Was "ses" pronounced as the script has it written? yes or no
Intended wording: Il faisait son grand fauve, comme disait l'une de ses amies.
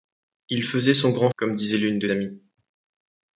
no